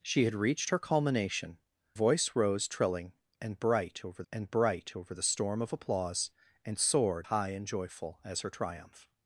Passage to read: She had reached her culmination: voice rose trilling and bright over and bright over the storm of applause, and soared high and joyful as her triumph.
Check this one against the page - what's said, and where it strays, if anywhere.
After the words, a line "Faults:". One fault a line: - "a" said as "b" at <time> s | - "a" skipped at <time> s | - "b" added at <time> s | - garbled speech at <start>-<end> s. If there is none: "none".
She had reached her culmination: voice rose trilling and bright over and bright over the storm of applause, and soared high and joyful as her triumph.
Faults:
none